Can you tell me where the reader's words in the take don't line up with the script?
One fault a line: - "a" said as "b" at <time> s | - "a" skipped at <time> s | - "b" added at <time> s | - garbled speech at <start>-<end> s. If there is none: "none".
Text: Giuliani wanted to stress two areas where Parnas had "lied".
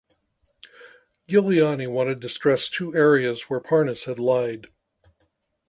none